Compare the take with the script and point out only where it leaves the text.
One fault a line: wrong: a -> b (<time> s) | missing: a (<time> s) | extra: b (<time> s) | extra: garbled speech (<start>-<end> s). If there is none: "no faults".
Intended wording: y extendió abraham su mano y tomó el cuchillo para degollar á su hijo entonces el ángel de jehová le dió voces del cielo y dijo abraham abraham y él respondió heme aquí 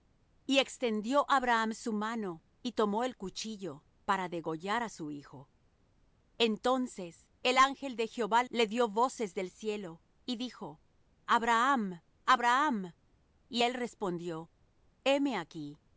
no faults